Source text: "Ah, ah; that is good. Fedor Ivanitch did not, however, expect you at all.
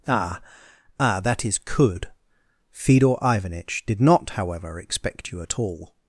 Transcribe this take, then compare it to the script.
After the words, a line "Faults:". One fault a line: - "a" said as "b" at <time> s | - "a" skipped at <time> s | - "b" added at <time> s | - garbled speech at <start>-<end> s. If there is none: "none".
"Ah, ah; that is could. Fedor Ivanitch did not, however, expect you at all.
Faults:
- "good" said as "could" at 1.6 s